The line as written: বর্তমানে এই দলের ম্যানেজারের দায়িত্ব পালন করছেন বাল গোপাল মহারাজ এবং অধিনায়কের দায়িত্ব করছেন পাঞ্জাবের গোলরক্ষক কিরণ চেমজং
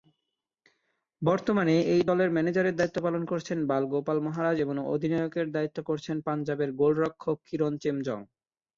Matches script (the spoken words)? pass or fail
pass